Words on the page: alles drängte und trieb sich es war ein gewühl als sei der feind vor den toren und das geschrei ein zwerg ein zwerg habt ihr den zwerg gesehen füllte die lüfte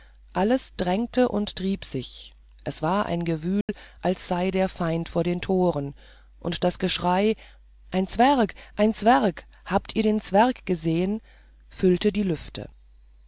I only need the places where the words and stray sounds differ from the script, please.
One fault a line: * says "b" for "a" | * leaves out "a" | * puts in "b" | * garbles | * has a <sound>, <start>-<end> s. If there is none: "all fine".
* has a dropout, 3.6-3.7 s